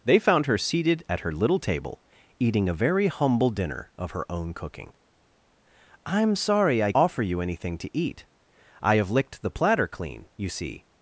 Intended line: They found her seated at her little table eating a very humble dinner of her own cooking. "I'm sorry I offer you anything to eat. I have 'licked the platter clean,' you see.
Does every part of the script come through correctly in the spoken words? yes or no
yes